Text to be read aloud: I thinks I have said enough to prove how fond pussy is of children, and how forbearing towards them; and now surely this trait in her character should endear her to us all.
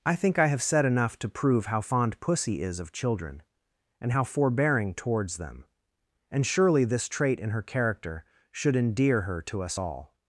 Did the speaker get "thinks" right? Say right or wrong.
wrong